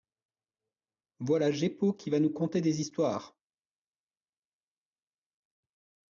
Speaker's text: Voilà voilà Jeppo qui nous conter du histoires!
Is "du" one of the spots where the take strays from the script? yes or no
yes